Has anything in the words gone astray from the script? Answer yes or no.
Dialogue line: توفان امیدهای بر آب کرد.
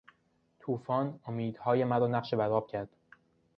yes